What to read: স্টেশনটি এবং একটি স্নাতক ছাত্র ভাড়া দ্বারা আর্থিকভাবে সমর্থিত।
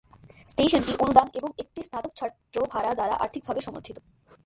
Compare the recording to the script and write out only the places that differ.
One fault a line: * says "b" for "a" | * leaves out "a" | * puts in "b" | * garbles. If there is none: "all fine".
* puts in "অনুদান"